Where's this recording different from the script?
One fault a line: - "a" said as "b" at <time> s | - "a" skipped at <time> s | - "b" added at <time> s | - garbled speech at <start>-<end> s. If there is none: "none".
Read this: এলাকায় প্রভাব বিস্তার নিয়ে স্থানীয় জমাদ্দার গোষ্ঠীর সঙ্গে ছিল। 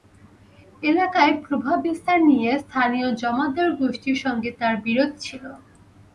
- "তাঁর বিরোধ" added at 4.6 s